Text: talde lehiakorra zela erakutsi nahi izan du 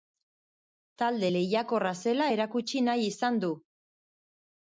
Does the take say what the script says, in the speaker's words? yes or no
yes